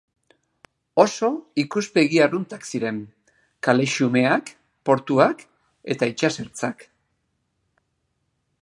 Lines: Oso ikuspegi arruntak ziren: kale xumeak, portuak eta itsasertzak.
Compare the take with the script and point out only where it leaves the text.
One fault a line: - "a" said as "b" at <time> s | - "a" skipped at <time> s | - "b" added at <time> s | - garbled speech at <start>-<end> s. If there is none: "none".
none